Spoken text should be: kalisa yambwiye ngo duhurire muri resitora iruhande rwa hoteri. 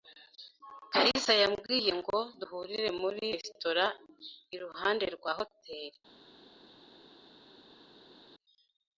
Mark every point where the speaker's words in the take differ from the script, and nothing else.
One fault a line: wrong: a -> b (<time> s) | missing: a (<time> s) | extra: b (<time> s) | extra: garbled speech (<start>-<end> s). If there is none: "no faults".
no faults